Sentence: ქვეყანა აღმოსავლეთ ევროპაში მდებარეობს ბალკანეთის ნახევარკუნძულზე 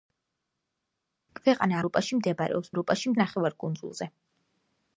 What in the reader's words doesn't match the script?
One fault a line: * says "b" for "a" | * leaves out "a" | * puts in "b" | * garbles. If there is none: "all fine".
* leaves out "აღმოსავლეთ"
* says "ევროპაში" for "ბალკანეთის"